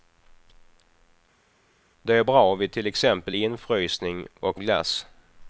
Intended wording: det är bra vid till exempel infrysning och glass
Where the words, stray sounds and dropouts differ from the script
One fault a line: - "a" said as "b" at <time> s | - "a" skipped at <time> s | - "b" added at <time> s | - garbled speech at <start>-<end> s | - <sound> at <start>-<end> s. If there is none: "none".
none